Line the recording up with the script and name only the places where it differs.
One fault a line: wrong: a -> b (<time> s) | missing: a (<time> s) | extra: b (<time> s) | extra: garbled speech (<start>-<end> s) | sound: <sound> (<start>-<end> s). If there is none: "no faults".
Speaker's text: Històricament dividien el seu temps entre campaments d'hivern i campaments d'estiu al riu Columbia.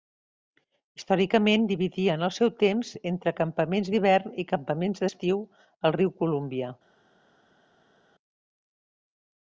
no faults